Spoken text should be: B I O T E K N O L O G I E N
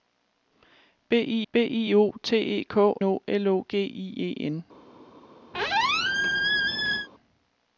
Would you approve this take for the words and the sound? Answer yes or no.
no